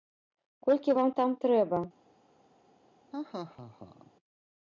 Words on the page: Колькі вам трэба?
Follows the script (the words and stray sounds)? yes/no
no